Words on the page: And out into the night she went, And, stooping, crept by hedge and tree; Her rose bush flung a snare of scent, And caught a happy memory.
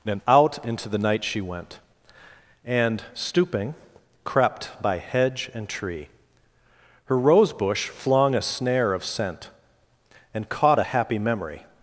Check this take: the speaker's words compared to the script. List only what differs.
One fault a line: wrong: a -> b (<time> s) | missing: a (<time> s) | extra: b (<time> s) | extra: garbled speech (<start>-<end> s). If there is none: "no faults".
no faults